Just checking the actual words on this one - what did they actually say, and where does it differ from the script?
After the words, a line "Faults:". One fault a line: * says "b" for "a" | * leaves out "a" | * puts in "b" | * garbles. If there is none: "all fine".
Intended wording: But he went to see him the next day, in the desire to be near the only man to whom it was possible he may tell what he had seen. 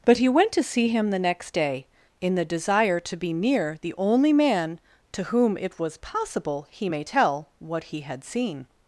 But he went to see him the next day, in the desire to be near the only man to whom it was possible he may tell what he had seen.
Faults:
all fine